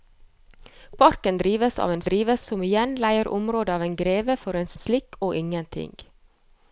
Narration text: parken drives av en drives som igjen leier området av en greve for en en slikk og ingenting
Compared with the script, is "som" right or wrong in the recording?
right